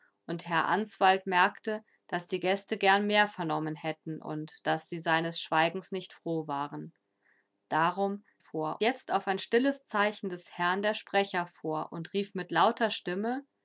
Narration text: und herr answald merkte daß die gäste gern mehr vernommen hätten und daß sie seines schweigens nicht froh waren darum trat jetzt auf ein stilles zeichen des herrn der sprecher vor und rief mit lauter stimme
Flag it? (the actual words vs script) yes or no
yes